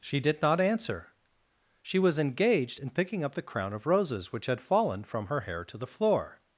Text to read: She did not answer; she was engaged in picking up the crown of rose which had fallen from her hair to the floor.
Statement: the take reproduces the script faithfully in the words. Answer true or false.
false